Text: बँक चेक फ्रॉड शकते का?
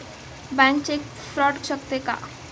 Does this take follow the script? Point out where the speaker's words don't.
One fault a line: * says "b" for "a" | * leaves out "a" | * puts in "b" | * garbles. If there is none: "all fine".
all fine